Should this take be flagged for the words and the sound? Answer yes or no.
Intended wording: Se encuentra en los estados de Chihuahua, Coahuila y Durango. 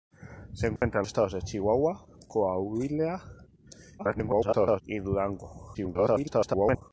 yes